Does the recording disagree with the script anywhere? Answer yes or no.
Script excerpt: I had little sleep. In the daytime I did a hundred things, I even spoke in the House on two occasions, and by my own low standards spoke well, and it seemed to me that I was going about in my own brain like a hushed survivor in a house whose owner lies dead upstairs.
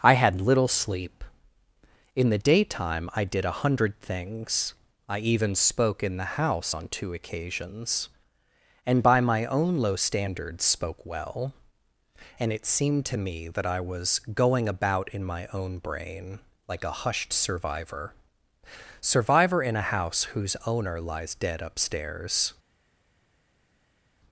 yes